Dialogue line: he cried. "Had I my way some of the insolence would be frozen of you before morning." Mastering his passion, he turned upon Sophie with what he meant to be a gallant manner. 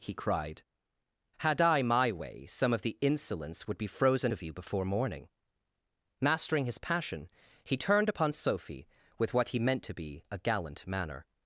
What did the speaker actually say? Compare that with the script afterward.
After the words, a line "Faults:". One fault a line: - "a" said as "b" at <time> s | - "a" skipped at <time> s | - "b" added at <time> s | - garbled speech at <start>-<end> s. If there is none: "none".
he cried. "Had I my way some of the insolence would be frozen of you before morning." Mastering his passion, he turned upon Sophie with what he meant to be a gallant manner.
Faults:
none